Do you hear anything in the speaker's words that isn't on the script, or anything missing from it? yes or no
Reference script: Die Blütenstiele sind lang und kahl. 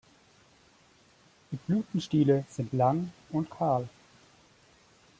no